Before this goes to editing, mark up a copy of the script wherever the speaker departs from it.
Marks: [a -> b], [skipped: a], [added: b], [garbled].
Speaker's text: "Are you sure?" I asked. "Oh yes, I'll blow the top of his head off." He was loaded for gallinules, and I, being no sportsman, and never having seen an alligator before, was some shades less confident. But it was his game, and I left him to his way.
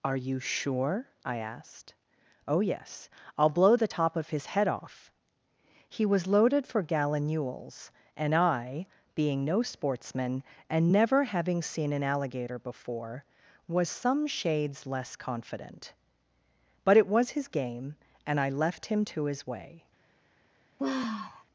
"Are you sure?" I asked. "Oh yes, I'll blow the top of his head off." He was loaded for gallinules, and I, being no sportsman, and never having seen an alligator before, was some shades less confident. But it was his game, and I left him to his way.